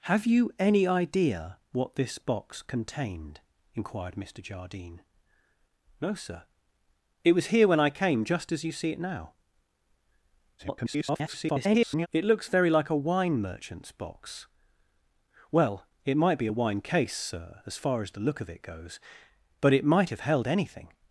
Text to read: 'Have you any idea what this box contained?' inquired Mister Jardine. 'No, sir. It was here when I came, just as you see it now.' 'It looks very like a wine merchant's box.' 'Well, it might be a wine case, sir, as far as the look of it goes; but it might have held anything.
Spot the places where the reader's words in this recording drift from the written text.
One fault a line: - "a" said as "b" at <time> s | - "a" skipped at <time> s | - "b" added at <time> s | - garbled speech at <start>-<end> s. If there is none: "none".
- garbled speech at 10.6-12.1 s